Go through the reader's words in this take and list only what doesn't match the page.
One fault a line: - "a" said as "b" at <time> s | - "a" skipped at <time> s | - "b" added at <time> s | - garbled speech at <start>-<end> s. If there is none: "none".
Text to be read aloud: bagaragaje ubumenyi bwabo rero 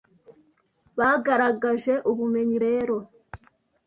- "bwabo" skipped at 2.6 s